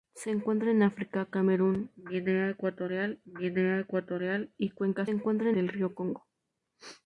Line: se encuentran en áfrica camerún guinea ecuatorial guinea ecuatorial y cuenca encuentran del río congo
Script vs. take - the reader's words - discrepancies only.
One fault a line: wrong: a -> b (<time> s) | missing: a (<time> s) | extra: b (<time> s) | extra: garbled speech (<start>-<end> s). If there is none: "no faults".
no faults